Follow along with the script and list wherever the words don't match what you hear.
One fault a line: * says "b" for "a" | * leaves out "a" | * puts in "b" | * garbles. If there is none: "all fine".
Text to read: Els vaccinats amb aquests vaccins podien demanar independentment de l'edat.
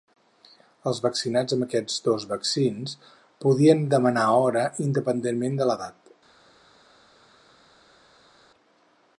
* puts in "dos"
* puts in "hora"